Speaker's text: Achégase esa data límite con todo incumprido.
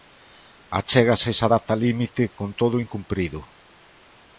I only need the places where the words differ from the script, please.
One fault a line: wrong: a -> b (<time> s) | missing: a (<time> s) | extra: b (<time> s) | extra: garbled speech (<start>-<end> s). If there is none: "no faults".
no faults